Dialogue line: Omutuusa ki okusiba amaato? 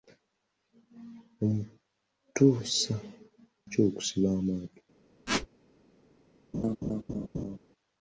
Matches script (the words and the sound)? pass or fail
fail